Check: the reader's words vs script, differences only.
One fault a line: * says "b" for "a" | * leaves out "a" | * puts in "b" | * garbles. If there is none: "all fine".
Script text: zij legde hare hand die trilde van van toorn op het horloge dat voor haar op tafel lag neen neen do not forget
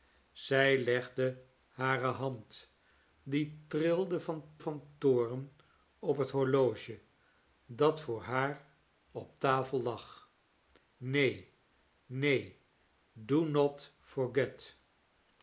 all fine